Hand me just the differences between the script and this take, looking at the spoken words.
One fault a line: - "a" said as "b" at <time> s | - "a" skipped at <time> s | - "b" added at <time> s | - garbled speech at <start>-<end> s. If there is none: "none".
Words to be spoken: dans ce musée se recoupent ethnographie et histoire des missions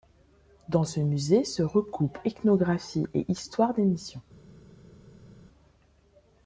none